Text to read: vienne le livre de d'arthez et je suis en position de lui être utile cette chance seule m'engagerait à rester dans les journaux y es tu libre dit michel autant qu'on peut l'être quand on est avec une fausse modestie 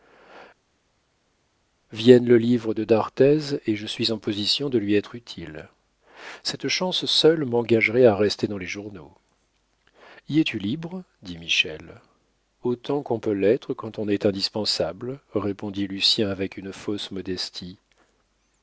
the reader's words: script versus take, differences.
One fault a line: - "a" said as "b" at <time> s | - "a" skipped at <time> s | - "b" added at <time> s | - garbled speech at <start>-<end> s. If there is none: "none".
- "indispensable répondit lucien" added at 14.3 s